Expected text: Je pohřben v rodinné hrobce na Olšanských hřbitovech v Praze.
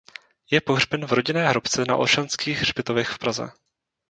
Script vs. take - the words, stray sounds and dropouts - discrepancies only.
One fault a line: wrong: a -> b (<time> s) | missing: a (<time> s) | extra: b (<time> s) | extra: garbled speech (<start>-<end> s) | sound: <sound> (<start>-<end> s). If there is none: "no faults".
no faults